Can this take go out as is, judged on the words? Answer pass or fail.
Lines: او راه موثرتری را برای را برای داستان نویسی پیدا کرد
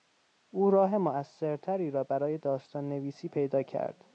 fail